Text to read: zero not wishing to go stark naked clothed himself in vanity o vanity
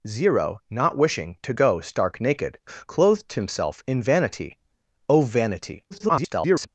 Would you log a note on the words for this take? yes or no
yes